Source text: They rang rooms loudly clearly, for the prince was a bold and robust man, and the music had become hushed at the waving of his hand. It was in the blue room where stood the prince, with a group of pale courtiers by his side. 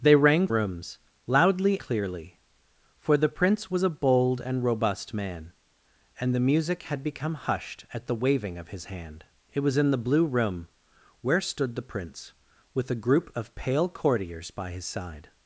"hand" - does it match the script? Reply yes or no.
yes